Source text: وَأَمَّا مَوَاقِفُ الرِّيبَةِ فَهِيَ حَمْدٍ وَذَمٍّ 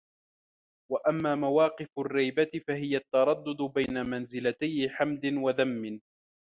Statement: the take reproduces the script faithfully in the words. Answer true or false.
false